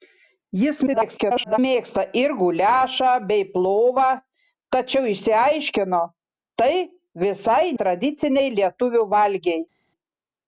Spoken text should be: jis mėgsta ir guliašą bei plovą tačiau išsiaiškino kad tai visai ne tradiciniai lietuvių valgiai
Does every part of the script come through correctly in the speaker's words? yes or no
no